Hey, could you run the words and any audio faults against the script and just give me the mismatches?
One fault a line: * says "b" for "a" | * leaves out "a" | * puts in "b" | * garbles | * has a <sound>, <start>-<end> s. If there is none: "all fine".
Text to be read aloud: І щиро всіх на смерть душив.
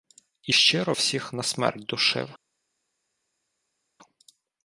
all fine